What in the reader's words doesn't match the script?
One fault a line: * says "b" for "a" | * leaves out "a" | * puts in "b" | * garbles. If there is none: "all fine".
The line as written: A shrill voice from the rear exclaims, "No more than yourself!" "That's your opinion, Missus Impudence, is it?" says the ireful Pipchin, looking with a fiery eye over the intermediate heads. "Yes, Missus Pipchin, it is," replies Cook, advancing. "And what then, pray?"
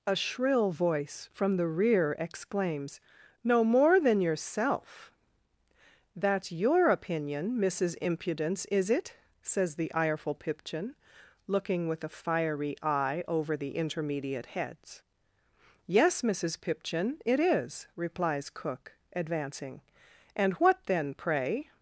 all fine